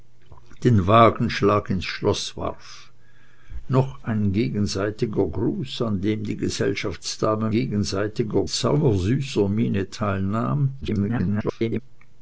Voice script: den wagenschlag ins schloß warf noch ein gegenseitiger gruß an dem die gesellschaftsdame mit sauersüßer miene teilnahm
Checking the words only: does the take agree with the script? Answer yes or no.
no